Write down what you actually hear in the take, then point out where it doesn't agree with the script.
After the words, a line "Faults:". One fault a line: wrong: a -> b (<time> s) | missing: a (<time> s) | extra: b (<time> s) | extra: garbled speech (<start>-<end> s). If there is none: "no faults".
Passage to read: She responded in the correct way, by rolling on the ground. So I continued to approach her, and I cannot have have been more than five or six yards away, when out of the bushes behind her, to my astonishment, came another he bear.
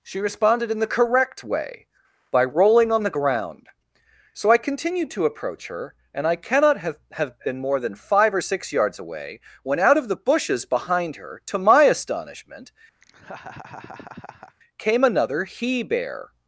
She responded in the correct way, by rolling on the ground. So I continued to approach her, and I cannot have have been more than five or six yards away, when out of the bushes behind her, to my astonishment, came another he bear.
Faults:
no faults